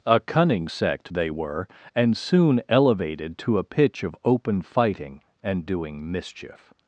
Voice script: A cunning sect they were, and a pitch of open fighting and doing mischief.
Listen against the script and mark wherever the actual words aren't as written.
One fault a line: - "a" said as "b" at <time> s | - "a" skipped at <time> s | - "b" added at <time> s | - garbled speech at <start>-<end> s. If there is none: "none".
- "soon elevated to" added at 2.2 s